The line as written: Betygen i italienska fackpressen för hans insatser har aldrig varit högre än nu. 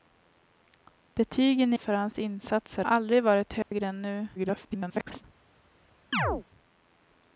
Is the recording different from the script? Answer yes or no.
yes